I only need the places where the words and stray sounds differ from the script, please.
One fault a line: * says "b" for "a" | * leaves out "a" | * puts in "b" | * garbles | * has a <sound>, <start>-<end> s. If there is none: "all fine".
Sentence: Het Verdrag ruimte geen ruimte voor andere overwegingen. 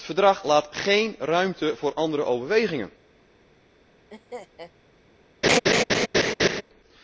* says "laat" for "ruimte"
* has a laugh, 4.1-4.7 s
* has a laugh, 5.4-6.6 s